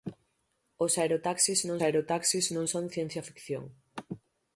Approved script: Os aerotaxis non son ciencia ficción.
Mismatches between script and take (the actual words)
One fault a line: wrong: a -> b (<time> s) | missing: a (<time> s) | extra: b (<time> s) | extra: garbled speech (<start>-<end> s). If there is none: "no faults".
extra: aerotaxis non (1.8 s)